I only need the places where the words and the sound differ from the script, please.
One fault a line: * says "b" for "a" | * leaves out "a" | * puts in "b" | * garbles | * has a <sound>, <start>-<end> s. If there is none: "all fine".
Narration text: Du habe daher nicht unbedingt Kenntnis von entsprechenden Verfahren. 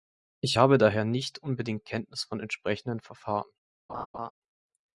* says "Ich" for "Du"
* has a laugh, 3.9-4.3 s